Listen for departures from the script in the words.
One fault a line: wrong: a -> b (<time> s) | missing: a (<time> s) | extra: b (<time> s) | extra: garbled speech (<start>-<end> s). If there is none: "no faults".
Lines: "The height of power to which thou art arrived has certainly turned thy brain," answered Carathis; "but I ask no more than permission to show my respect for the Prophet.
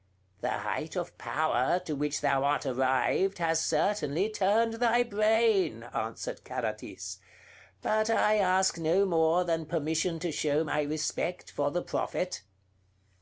no faults